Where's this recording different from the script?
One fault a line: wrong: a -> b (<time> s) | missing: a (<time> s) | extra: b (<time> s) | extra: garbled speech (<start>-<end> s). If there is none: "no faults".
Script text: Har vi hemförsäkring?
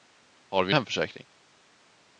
no faults